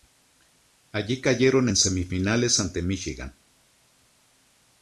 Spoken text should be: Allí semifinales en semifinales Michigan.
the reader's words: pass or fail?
fail